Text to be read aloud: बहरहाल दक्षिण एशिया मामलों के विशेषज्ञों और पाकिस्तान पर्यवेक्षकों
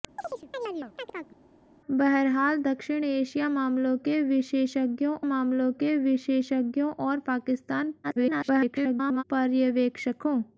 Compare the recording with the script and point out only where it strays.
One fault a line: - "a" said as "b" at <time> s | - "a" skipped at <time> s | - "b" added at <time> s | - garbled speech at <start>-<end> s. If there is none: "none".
- "मामलों के विशेषज्ञों" added at 5.2 s
- garbled speech at 8.0-9.2 s